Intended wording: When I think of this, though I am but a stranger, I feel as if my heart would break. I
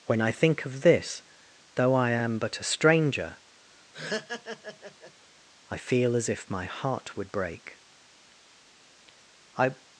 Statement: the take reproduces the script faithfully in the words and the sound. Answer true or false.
false